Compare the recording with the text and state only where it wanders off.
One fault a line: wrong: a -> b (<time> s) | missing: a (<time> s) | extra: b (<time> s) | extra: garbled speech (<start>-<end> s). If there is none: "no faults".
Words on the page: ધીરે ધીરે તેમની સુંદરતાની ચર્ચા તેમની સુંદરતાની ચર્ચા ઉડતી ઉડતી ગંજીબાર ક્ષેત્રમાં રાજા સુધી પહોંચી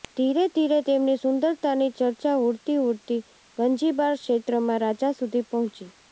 missing: તેમની સુંદરતાની ચર્ચા (2.3 s)